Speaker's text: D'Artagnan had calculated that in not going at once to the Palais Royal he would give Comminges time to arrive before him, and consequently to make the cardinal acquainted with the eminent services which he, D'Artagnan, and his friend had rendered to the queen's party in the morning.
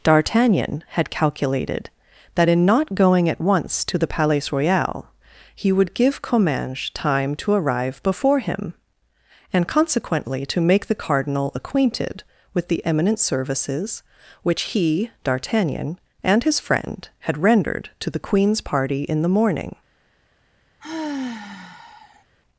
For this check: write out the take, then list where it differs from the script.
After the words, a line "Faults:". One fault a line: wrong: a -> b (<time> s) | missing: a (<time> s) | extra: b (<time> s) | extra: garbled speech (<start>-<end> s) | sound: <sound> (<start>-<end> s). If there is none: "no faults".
D'Artagnan had calculated that in not going at once to the Palais Royal he would give Comminges time to arrive before him, and consequently to make the cardinal acquainted with the eminent services which he, D'Artagnan, and his friend had rendered to the queen's party in the morning.
Faults:
sound: sigh (20.8-22.2 s)